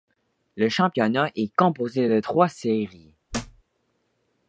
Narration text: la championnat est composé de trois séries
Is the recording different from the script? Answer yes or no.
yes